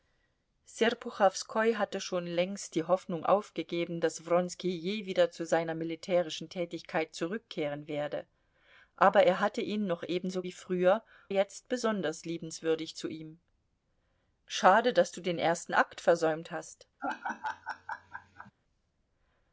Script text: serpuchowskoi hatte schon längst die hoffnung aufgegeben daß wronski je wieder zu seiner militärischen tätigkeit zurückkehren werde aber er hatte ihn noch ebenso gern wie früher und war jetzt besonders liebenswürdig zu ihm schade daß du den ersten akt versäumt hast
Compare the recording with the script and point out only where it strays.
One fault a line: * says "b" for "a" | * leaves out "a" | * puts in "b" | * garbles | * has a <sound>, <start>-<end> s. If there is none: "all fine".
* leaves out "gern"
* leaves out "und war"
* has a laugh, 17.0-18.5 s